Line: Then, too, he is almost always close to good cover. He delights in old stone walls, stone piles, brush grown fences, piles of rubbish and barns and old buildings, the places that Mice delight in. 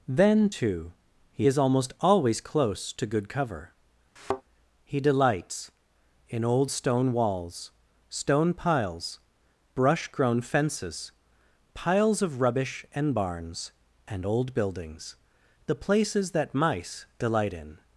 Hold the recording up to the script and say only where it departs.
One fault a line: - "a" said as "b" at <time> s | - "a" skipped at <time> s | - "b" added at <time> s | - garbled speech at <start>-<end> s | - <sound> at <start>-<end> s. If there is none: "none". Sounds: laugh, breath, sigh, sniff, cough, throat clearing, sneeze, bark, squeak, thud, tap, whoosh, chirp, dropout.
- thud at 4.2-4.4 s